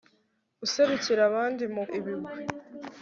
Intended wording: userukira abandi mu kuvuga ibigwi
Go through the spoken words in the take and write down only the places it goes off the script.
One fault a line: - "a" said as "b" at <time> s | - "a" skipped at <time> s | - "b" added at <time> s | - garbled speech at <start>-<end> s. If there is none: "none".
- "kuvuga" skipped at 1.8 s